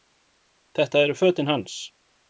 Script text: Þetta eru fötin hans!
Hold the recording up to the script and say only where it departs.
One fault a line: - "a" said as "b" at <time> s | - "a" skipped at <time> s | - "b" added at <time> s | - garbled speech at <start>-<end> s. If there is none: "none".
none